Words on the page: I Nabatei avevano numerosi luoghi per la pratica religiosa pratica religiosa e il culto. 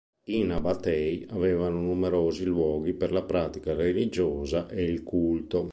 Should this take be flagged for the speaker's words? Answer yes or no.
yes